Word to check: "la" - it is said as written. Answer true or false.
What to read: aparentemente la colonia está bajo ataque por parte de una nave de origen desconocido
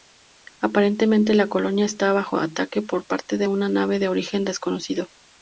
true